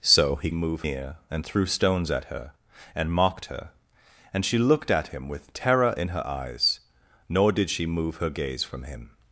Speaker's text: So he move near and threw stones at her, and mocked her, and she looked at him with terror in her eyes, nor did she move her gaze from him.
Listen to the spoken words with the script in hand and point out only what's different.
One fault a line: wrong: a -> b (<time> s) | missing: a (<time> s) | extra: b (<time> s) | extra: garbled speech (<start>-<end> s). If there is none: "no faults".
no faults